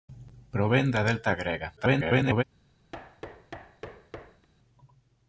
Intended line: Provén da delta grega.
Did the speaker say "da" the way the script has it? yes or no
yes